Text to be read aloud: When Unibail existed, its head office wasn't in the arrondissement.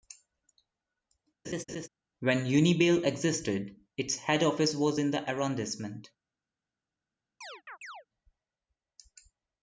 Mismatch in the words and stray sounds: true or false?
true